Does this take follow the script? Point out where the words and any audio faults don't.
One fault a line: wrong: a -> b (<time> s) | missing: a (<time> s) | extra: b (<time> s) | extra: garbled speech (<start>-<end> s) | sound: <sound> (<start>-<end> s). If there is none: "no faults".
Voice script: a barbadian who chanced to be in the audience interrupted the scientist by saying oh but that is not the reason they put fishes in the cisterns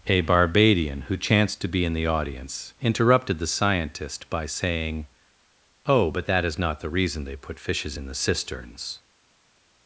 no faults